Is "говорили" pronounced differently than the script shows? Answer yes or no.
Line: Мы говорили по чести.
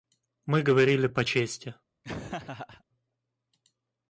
no